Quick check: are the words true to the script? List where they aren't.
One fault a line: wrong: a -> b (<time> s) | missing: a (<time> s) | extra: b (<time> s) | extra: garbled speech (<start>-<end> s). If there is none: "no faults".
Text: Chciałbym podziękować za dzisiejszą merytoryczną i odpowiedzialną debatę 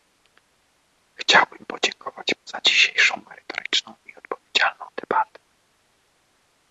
no faults